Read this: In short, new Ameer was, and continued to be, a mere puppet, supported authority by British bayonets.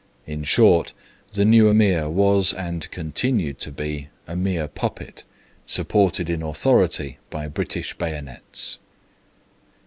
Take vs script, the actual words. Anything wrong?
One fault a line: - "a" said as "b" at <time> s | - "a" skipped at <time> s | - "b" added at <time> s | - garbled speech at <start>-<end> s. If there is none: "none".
- "the" added at 1.3 s
- "in" added at 6.3 s